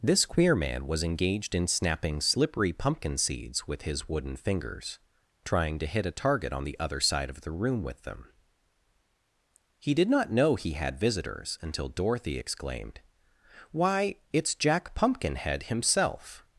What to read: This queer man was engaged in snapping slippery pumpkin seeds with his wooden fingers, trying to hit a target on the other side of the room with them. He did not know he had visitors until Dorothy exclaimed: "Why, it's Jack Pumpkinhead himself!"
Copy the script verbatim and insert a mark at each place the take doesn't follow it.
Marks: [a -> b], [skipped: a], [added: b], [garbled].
This queer man was engaged in snapping slippery pumpkin seeds with his wooden fingers, trying to hit a target on the other side of the room with them. He did not know he had visitors until Dorothy exclaimed: "Why, it's Jack Pumpkinhead himself!"